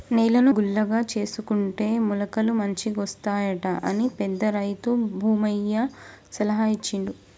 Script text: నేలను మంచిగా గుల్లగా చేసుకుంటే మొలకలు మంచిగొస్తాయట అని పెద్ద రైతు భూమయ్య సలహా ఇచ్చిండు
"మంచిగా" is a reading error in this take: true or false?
true